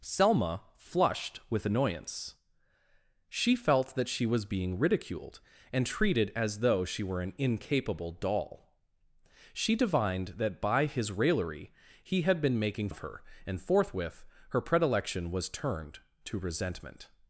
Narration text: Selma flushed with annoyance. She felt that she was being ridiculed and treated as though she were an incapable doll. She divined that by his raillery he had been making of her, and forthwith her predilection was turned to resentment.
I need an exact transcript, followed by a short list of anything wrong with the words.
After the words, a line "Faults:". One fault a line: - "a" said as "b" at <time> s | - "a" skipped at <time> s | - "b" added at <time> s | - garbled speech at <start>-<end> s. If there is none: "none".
Selma flushed with annoyance. She felt that she was being ridiculed and treated as though she were an incapable doll. She divined that by his raillery he had been making of her, and forthwith her predilection was turned to resentment.
Faults:
none